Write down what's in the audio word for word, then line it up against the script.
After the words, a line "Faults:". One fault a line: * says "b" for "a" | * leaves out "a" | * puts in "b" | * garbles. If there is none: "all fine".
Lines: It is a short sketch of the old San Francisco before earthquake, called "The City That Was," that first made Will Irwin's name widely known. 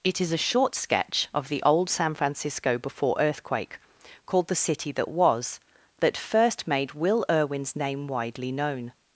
It is a short sketch of the old San Francisco before earthquake, called "The City That Was," that first made Will Irwin's name widely known.
Faults:
all fine